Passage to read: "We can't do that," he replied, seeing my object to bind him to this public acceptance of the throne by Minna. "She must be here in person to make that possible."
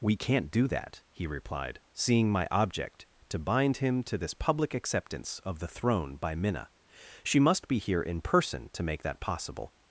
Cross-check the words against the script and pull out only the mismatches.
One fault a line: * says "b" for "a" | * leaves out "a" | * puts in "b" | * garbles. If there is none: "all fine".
all fine